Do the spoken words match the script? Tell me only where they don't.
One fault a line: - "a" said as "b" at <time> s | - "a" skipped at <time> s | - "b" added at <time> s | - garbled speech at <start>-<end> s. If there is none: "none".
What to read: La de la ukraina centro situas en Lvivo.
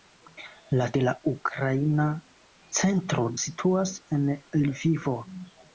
none